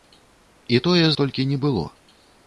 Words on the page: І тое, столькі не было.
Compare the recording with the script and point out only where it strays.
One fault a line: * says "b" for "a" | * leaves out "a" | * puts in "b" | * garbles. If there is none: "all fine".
all fine